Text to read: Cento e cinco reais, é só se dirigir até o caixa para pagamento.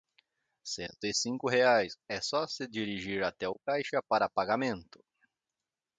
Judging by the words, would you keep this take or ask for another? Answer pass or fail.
pass